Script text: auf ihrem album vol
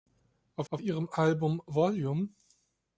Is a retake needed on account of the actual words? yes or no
yes